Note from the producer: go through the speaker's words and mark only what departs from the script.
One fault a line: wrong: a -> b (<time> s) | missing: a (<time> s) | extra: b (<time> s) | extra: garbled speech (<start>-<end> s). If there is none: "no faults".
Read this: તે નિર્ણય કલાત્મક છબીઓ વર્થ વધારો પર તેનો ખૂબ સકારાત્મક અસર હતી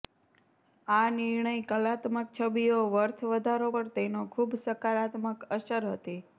wrong: તે -> આ (0.9 s)